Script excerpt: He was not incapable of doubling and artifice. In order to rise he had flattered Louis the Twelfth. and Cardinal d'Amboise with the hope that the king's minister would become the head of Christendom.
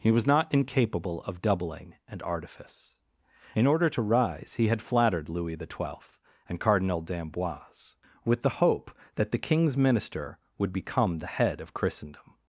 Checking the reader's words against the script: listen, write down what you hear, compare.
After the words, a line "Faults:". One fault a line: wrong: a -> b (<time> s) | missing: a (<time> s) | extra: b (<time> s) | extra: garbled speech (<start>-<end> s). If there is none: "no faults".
He was not incapable of doubling and artifice. In order to rise he had flattered Louis the Twelfth. and Cardinal d'Amboise with the hope that the king's minister would become the head of Christendom.
Faults:
no faults